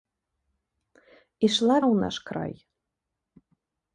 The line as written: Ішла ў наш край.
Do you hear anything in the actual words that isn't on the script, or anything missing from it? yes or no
no